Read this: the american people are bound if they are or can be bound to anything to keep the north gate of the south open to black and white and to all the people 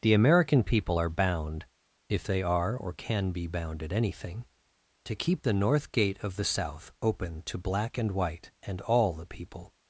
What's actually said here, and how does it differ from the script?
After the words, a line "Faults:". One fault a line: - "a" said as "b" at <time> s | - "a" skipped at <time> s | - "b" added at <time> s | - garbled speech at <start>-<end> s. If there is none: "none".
the american people are bound if they are or can be bound at anything to keep the north gate of the south open to black and white and all the people
Faults:
- "to" said as "at" at 3.8 s
- "to" skipped at 8.8 s